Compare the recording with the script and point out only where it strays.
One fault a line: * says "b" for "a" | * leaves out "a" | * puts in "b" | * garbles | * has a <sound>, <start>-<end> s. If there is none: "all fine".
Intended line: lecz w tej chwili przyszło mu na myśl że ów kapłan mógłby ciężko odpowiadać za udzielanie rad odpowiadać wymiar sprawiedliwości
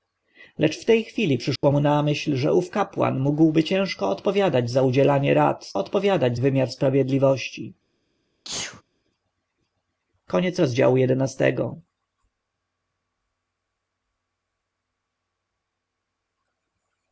* has a dropout, 1.6-1.6 s
* has a sneeze, 8.5-8.8 s